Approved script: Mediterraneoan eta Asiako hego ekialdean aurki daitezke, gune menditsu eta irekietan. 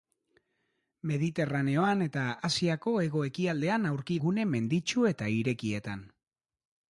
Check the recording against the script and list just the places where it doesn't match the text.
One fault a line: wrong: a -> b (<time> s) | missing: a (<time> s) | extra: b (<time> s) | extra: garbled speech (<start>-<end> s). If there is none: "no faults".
missing: daitezke (4.2 s)